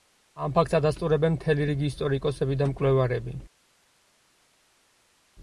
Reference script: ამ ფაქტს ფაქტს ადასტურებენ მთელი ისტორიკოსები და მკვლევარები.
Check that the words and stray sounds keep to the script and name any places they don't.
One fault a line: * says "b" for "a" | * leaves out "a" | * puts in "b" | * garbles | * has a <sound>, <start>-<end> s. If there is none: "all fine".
* leaves out "ფაქტს"
* puts in "რიგი"